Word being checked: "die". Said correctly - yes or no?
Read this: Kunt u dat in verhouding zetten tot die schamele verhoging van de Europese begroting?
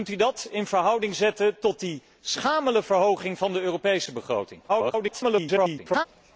yes